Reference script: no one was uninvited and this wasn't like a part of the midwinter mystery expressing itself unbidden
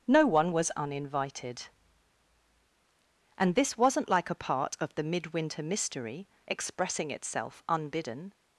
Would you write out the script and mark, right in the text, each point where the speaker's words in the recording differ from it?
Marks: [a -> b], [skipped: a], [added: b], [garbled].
no one was uninvited and this wasn't like a part of the midwinter mystery expressing itself unbidden